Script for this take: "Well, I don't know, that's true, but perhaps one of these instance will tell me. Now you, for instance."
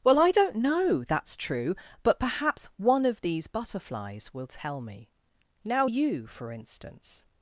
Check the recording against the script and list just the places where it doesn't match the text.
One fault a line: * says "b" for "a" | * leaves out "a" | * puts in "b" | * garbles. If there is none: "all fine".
* says "butterflies" for "instance"